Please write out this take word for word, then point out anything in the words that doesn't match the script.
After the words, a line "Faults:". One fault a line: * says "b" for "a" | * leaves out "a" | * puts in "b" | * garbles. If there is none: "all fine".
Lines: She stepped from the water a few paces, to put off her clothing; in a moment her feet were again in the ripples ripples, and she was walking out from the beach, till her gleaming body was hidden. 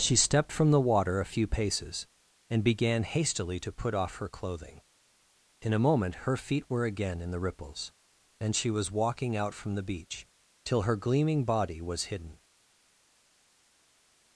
She stepped from the water a few paces, and began hastily to put off her clothing; in a moment her feet were again in the ripples, and she was walking out from the beach, till her gleaming body was hidden.
Faults:
* puts in "and began hastily"
* leaves out "ripples"